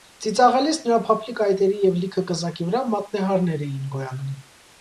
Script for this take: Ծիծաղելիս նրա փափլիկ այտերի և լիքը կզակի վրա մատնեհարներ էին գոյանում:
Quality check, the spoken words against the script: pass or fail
pass